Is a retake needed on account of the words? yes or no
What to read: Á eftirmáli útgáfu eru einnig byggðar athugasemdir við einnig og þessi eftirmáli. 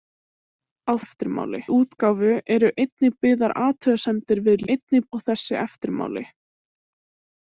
no